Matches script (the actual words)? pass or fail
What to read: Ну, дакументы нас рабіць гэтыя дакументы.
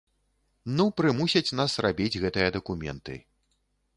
fail